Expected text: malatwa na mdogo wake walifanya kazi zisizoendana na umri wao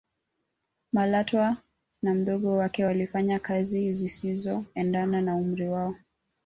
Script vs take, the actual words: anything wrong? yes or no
no